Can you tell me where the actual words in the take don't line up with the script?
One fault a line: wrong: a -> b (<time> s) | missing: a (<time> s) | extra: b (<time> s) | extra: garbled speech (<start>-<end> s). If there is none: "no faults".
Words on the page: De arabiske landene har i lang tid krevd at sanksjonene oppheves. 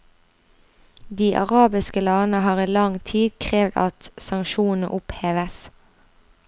no faults